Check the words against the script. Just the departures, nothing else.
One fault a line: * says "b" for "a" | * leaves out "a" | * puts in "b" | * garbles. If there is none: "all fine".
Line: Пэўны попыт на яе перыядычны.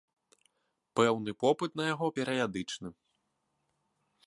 * says "яго" for "яе"